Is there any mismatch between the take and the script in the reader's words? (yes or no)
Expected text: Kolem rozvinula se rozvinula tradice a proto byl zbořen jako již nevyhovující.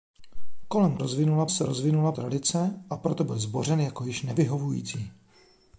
no